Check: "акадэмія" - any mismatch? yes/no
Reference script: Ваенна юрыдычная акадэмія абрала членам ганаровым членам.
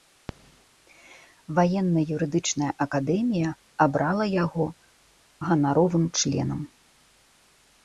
no